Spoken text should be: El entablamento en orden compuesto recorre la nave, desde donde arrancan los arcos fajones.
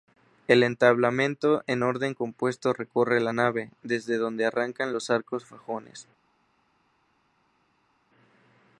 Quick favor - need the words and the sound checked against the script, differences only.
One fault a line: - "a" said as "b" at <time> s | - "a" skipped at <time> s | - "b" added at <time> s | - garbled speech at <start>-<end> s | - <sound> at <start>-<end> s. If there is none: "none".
none